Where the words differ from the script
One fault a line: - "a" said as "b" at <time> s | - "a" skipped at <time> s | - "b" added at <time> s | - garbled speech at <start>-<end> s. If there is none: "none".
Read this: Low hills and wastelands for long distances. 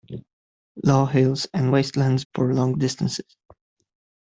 none